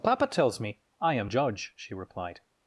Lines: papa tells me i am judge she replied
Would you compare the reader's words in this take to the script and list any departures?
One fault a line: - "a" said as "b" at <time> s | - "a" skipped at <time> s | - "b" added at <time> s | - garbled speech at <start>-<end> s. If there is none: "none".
none